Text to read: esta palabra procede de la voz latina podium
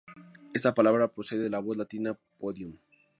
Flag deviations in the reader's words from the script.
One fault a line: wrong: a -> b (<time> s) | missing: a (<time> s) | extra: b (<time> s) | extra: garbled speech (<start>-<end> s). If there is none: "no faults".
no faults